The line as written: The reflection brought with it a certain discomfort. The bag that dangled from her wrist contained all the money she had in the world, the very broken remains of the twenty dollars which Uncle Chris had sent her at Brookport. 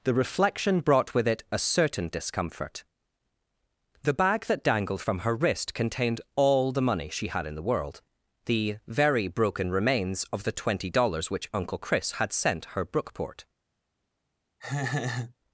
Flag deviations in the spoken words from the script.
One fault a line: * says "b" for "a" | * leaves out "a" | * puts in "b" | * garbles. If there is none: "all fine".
* leaves out "at"